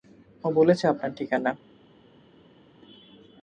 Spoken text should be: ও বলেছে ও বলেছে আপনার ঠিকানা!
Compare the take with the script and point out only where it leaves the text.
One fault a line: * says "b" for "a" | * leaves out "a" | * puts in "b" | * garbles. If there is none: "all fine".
* leaves out "ও বলেছে"